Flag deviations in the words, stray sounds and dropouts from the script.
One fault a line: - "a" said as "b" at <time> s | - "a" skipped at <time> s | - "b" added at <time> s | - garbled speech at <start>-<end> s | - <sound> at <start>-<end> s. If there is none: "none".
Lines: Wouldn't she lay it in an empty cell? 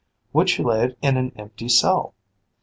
- "Wouldn't" said as "Would" at 0.3 s